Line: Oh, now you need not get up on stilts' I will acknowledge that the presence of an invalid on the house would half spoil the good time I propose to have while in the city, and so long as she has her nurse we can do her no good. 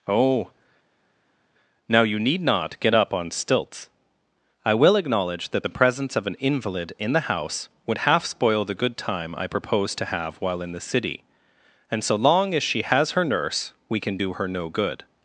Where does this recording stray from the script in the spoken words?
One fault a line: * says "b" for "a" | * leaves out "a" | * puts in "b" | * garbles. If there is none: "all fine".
* says "in" for "on"